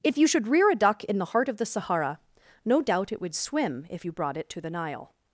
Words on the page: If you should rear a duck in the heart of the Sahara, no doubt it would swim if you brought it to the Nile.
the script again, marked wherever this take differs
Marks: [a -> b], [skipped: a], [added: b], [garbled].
If you should rear a duck in the heart of the Sahara, no doubt it would swim if you brought it to the Nile.